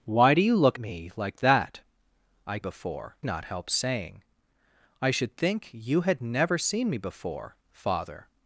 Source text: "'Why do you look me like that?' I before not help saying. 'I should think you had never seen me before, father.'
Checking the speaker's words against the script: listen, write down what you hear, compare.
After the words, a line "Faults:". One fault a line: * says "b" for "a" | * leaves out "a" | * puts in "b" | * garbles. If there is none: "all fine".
"'Why do you look me like that?' I before not help saying. 'I should think you had never seen me before, father.'
Faults:
all fine